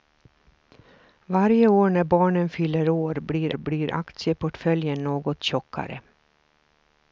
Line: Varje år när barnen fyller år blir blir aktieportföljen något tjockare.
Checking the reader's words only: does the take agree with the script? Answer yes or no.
yes